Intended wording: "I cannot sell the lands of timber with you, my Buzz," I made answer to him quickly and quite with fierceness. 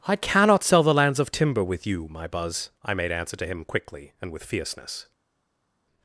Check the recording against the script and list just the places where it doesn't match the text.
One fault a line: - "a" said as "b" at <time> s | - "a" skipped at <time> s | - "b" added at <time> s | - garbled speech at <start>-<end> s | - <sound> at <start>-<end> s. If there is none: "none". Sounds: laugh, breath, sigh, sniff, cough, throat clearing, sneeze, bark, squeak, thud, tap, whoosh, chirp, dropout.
- "quite" skipped at 4.3 s